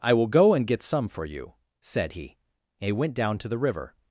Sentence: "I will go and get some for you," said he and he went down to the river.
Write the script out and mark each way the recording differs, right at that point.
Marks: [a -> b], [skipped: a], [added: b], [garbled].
"I will go and get some for you," said he and he went down to the river.